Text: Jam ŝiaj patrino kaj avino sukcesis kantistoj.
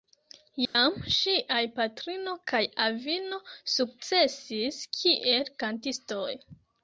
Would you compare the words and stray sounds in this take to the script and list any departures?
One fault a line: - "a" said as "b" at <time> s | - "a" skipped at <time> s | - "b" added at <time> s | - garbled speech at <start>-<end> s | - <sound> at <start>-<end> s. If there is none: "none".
- dropout at 0.6-0.7 s
- "kiel" added at 5.0 s